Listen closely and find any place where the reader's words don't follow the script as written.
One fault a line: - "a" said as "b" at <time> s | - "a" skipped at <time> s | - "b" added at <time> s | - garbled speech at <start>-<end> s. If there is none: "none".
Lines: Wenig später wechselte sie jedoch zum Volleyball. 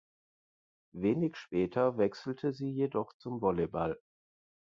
none